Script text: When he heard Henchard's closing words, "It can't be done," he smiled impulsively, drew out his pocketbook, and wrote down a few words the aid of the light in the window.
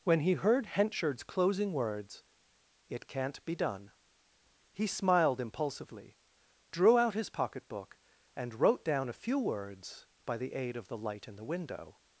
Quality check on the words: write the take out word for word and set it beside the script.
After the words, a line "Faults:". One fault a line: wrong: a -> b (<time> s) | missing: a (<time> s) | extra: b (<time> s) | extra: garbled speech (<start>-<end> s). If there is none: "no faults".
When he heard Henchard's closing words, "It can't be done," he smiled impulsively, drew out his pocketbook, and wrote down a few words by the aid of the light in the window.
Faults:
extra: by (10.2 s)